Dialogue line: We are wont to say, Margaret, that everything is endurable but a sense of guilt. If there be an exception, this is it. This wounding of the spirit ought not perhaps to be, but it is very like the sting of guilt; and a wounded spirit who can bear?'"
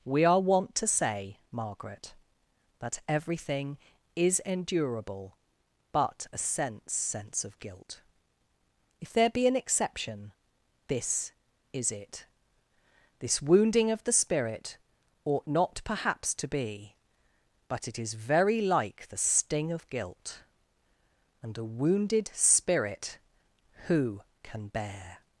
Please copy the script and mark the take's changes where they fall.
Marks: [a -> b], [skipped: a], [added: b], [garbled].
We are wont to say, Margaret, that everything is endurable but a sense [added: sense] of guilt. If there be an exception, this is it. This wounding of the spirit ought not perhaps to be, but it is very like the sting of guilt; and a wounded spirit who can bear?'"